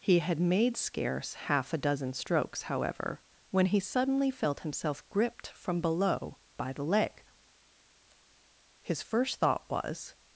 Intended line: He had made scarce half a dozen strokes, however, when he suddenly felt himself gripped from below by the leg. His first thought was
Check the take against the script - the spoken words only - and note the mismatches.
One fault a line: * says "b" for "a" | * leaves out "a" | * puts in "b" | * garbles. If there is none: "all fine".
all fine